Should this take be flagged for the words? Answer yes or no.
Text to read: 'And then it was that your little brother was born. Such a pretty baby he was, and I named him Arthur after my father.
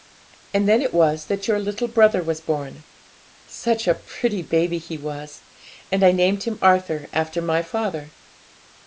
no